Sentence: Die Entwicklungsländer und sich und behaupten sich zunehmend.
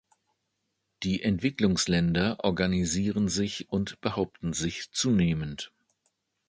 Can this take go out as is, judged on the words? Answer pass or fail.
fail